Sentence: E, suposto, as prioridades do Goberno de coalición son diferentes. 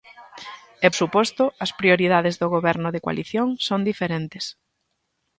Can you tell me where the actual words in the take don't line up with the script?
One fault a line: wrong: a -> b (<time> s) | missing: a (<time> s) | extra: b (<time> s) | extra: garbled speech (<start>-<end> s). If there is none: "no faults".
no faults